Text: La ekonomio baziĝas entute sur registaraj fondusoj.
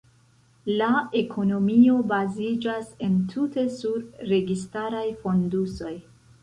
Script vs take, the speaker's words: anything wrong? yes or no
no